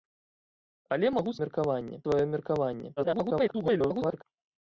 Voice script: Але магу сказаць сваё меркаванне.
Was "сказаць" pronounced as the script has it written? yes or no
no